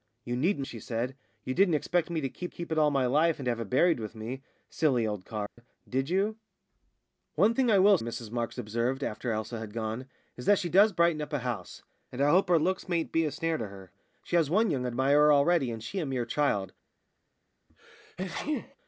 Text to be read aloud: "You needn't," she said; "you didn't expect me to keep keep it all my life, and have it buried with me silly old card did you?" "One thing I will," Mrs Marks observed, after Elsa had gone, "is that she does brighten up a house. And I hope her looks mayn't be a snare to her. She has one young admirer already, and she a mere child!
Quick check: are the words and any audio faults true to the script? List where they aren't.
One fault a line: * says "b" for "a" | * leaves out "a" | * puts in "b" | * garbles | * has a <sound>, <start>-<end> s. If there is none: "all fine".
* has a dropout, 5.5-5.6 s
* has a sneeze, 17.7-18.8 s